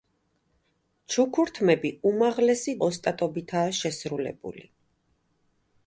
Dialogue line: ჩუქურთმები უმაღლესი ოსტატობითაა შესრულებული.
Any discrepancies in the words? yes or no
no